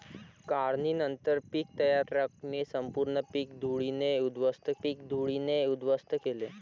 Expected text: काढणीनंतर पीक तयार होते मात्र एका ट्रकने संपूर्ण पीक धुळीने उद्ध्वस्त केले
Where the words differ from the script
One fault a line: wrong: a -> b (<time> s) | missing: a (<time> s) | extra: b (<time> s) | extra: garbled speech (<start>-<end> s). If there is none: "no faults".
wrong: होते मात्र एका ट्रकने संपूर्ण -> ट्रकने संपूर्ण पीक धुळीने उद्ध्वस्त (2.0 s)